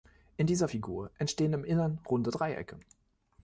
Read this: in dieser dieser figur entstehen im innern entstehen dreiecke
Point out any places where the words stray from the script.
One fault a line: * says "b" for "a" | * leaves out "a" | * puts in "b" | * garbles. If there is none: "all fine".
* leaves out "dieser"
* says "runde" for "entstehen"